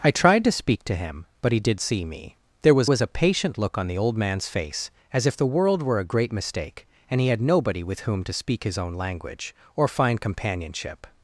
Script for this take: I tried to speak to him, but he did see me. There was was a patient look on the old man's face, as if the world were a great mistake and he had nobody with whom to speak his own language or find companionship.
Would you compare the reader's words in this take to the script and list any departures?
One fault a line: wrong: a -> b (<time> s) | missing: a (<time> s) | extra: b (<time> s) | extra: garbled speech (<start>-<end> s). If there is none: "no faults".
no faults